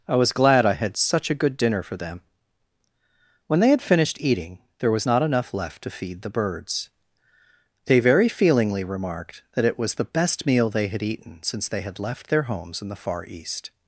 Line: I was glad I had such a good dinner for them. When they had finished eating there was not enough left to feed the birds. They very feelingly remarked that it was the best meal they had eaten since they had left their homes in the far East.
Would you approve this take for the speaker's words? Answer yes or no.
yes